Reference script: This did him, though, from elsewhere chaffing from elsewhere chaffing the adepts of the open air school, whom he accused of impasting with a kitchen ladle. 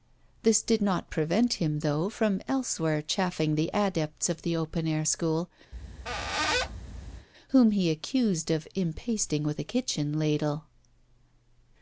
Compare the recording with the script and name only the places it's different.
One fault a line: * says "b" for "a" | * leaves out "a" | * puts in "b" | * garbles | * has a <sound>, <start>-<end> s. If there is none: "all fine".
* puts in "not prevent"
* leaves out "from elsewhere chaffing"
* has a squeak, 5.7-7.3 s